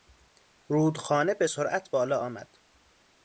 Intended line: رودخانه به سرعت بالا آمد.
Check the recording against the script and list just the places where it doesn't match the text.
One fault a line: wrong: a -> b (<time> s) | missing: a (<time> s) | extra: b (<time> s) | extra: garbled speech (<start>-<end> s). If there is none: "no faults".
no faults